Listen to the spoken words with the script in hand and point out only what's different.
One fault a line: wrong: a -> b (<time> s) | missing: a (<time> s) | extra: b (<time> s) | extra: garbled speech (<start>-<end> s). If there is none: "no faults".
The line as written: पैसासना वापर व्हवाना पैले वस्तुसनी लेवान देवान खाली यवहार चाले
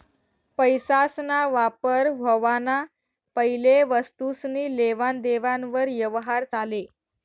wrong: खाली -> वर (5.7 s)